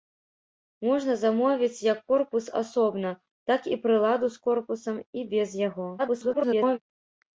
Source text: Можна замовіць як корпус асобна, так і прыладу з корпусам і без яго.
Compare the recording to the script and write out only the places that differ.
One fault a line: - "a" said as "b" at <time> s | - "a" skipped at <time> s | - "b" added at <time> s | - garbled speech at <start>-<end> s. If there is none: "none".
- garbled speech at 6.0-6.8 s